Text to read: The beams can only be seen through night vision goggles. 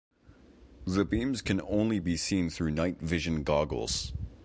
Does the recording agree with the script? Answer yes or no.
yes